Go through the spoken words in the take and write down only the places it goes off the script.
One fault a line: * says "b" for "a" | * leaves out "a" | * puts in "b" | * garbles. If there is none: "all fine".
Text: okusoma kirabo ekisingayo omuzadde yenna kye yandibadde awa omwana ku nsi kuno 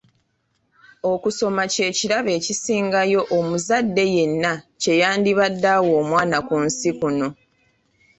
* puts in "kye"